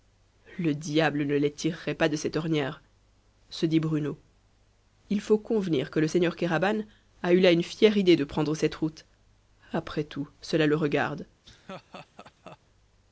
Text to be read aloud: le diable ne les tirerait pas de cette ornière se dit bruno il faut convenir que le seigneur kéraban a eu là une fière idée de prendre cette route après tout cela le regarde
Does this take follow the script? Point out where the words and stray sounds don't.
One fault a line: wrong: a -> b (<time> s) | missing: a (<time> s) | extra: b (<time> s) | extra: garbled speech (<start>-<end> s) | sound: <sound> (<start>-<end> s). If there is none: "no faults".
sound: laugh (11.4-12.6 s)